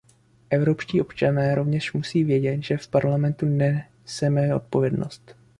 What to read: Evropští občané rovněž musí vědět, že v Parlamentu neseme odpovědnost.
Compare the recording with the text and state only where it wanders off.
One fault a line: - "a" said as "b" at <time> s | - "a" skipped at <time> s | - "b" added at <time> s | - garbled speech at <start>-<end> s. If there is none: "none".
none